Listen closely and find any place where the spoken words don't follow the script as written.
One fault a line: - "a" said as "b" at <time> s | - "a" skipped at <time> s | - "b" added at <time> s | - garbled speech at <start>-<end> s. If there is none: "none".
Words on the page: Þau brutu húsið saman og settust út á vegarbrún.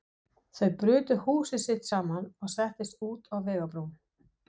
- "sitt" added at 1.6 s